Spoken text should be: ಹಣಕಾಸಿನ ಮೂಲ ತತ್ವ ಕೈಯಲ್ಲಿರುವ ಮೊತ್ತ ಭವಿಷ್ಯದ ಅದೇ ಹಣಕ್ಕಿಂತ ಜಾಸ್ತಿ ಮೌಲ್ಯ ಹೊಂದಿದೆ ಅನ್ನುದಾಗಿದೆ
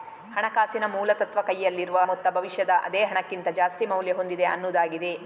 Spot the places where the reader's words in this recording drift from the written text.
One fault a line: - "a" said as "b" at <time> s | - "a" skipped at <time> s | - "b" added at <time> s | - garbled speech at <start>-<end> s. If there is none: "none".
none